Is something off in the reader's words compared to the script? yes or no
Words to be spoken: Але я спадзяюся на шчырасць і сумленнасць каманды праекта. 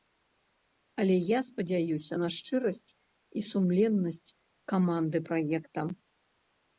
no